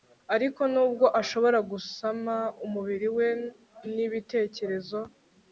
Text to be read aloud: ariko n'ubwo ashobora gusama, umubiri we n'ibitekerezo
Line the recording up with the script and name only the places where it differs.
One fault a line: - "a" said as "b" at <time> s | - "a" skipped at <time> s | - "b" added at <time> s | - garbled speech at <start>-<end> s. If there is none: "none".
none